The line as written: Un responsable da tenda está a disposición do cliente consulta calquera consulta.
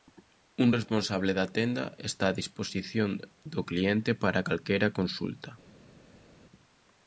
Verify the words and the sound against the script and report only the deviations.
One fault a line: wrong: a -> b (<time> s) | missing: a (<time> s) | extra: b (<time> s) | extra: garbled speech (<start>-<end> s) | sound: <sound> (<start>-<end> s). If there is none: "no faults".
wrong: consulta -> para (4.2 s)